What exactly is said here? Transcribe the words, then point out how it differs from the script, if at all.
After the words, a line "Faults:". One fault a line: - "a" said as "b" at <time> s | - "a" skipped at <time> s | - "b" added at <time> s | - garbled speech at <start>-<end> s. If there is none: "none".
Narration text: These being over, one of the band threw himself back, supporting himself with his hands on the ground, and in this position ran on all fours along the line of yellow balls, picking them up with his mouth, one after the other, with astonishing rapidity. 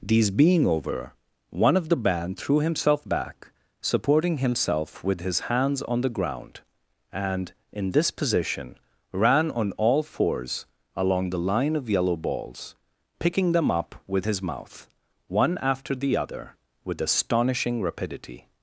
These being over, one of the band threw himself back, supporting himself with his hands on the ground, and in this position ran on all fours along the line of yellow balls, picking them up with his mouth, one after the other, with astonishing rapidity.
Faults:
none